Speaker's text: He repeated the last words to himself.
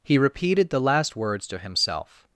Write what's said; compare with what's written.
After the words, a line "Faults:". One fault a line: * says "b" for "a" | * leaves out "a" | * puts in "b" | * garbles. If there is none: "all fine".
He repeated the last words to himself.
Faults:
all fine